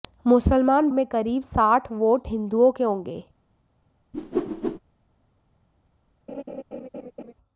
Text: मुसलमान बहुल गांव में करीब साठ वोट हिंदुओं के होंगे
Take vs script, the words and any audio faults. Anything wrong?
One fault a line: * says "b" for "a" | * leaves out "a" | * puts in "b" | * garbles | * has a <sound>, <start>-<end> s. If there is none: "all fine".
* leaves out "बहुल गांव"
* has a whoosh, 4.1-4.8 s
* has a laugh, 6.3-7.3 s